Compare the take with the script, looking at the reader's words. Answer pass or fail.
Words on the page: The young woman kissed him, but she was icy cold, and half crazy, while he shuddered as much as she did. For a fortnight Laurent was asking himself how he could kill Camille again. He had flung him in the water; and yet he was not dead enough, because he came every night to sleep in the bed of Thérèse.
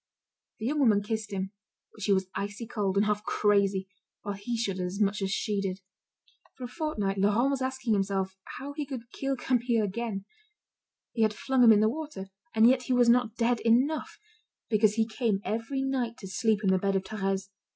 pass